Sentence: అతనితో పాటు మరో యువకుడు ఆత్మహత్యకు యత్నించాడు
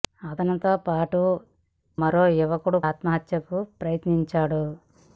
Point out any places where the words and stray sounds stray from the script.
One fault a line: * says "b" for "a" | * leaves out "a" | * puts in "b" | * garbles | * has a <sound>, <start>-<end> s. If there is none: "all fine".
all fine